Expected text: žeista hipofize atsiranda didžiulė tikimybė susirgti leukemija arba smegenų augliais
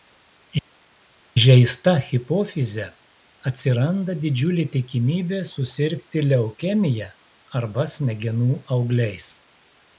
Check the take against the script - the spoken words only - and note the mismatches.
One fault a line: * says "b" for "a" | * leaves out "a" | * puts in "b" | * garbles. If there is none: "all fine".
all fine